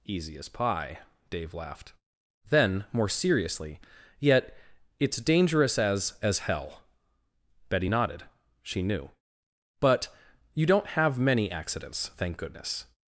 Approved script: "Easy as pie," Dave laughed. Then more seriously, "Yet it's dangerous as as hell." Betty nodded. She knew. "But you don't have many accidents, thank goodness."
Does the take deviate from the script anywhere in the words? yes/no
no